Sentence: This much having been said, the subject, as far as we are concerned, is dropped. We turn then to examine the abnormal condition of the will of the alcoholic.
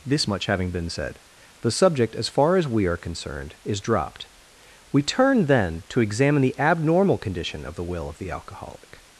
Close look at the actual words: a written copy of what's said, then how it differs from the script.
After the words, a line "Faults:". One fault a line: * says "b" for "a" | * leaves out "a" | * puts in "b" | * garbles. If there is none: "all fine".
This much having been said, the subject, as far as we are concerned, is dropped. We turn then to examine the abnormal condition of the will of the alcoholic.
Faults:
all fine